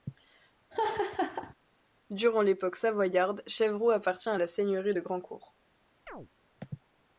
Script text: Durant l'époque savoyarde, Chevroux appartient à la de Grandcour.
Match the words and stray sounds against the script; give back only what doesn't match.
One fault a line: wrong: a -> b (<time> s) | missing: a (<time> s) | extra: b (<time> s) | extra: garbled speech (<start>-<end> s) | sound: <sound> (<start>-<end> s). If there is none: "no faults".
sound: laugh (0.7-1.5 s)
extra: seigneurie (4.5 s)
sound: chirp (6.1-6.3 s)